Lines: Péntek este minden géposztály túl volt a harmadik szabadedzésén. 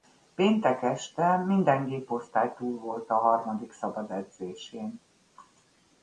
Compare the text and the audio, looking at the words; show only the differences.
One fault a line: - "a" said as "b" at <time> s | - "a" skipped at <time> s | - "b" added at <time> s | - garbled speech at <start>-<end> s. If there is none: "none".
none